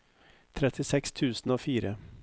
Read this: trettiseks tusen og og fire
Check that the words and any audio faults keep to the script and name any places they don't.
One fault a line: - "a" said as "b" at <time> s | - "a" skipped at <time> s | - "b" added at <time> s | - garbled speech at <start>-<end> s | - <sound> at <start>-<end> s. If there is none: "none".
- "og" skipped at 1.6 s